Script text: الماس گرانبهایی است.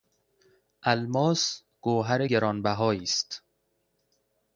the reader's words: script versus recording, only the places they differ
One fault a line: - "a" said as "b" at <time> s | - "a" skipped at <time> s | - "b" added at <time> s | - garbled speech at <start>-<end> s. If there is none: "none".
- "گوهر" added at 1.8 s